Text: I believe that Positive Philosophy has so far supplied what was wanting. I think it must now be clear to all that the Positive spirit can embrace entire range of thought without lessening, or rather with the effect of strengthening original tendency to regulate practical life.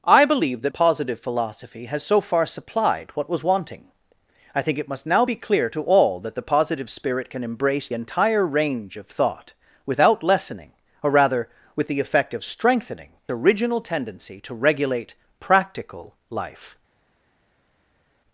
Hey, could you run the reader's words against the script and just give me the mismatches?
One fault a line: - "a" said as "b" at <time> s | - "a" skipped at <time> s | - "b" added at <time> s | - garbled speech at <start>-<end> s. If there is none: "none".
none